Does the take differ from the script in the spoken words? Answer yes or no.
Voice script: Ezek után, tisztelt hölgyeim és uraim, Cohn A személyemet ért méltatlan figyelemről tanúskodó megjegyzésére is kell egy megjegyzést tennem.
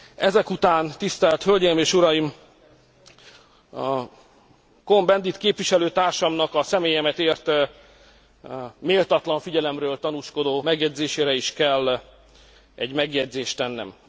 yes